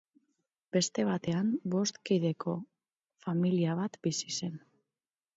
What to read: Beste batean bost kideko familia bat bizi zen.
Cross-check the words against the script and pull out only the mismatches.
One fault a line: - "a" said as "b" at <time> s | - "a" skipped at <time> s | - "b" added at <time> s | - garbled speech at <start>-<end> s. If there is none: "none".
none